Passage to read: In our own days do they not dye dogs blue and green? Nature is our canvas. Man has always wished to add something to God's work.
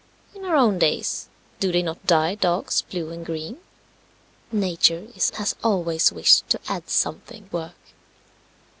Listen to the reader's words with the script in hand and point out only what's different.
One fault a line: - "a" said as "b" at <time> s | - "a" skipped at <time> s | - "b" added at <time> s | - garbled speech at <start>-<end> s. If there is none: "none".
- "our canvas Man" skipped at 5.3 s
- "to God's" skipped at 7.5 s